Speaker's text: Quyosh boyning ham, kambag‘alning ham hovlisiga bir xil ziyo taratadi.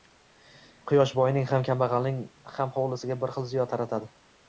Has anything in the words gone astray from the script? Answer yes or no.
no